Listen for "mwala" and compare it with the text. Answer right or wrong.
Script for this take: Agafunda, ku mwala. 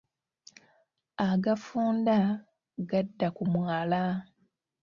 right